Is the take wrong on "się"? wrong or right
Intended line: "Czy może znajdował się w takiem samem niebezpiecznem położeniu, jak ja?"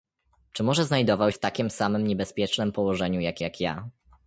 wrong